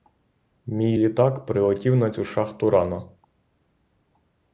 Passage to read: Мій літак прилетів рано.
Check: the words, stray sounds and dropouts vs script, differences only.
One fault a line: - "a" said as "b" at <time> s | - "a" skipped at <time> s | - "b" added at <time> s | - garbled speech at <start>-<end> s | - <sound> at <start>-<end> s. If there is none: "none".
- "на цю шахту" added at 2.0 s